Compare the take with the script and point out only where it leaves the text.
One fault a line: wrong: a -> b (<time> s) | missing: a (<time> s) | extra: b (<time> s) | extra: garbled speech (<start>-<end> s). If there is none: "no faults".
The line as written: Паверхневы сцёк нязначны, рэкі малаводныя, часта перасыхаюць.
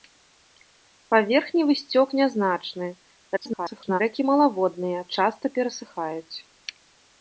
extra: garbled speech (3.4-4.0 s)